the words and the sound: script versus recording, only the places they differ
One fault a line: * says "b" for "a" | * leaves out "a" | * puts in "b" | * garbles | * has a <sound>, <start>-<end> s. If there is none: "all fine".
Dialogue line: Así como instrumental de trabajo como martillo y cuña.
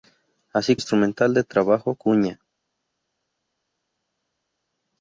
* leaves out "como"
* leaves out "como martillo y"